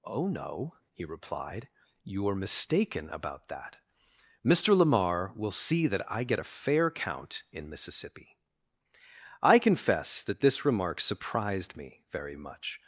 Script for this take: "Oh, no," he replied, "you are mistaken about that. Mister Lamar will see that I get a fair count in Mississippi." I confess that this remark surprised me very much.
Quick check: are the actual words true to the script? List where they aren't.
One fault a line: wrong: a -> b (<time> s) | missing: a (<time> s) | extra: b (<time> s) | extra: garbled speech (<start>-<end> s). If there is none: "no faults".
no faults